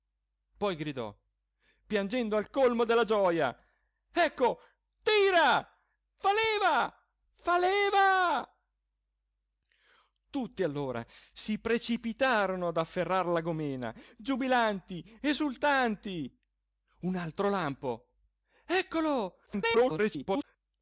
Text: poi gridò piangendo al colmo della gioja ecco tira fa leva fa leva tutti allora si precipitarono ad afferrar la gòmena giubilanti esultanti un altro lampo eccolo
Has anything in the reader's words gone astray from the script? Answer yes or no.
yes